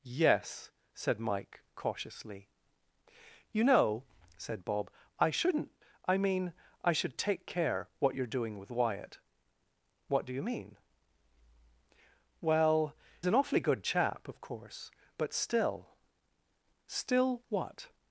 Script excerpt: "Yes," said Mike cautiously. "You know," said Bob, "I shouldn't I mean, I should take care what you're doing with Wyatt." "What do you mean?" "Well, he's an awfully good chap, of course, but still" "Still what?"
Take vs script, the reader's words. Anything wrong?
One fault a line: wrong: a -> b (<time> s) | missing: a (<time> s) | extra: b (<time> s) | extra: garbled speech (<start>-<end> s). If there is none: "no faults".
missing: he's (12.9 s)